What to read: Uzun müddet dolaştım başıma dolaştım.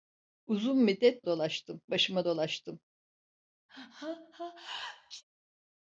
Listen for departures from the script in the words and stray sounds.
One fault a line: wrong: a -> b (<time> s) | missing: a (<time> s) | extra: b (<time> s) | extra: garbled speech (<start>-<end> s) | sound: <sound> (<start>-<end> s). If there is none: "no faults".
sound: sneeze (3.7-5.2 s)